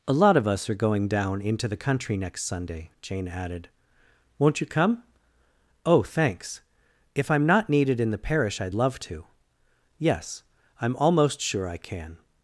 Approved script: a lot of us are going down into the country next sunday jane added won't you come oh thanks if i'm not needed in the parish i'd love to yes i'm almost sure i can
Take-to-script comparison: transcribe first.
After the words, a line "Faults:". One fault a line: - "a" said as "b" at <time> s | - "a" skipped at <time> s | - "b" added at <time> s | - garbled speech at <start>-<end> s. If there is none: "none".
a lot of us are going down into the country next sunday jane added won't you come oh thanks if i'm not needed in the parish i'd love to yes i'm almost sure i can
Faults:
none